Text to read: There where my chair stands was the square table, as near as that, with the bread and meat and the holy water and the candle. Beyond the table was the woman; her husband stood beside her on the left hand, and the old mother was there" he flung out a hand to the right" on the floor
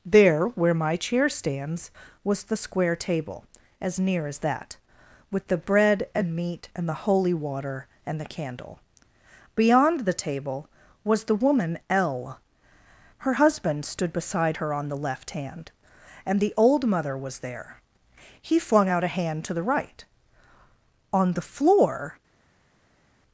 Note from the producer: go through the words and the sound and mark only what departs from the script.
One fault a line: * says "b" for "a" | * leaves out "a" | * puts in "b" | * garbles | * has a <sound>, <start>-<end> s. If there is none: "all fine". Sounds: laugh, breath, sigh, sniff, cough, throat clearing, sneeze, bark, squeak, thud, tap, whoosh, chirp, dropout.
* puts in "l"